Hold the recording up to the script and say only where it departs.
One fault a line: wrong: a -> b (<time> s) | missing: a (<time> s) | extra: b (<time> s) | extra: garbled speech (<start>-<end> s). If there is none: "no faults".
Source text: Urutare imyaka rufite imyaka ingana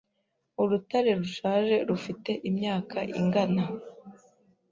wrong: imyaka -> rushaje (1.2 s)